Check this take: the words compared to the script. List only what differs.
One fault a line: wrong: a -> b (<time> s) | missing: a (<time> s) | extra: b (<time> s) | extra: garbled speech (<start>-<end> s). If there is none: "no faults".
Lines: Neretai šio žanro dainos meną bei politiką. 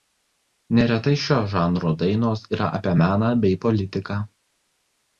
extra: yra apie (2.6 s)